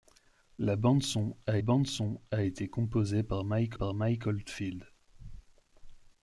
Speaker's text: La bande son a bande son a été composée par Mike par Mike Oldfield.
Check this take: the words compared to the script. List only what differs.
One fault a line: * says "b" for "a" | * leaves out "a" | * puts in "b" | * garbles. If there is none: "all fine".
all fine